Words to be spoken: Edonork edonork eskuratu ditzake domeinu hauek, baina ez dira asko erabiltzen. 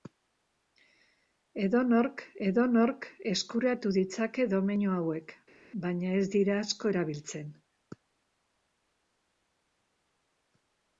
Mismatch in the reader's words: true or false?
false